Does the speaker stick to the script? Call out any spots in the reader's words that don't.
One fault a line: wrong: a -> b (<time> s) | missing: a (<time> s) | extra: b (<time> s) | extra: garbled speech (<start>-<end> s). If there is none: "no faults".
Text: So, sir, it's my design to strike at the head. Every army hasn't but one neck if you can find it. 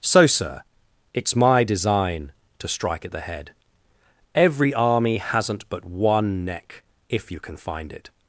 no faults